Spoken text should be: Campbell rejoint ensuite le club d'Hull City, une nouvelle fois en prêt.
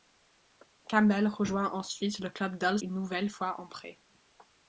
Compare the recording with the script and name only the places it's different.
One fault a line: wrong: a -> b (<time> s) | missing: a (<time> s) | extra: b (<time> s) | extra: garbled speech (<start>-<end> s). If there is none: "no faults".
missing: City (2.8 s)